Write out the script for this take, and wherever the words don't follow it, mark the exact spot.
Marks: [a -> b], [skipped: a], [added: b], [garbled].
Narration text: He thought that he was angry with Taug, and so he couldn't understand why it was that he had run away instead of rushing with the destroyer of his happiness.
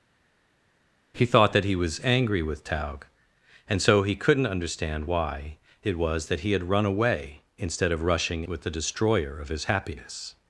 He thought that he was angry with Taug, and so he couldn't understand why it was that he had run away instead of rushing with the destroyer of his happiness.